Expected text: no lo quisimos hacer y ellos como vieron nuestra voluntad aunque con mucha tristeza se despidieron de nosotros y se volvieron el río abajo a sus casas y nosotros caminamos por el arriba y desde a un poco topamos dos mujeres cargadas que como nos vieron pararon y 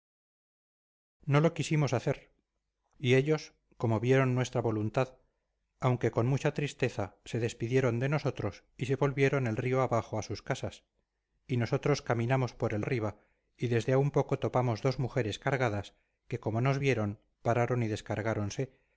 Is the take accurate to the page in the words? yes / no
yes